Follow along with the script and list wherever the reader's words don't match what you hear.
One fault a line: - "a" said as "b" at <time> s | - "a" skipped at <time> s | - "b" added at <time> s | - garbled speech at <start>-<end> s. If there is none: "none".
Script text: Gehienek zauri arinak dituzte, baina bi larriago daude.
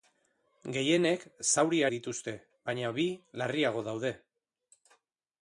- "arinak" skipped at 1.8 s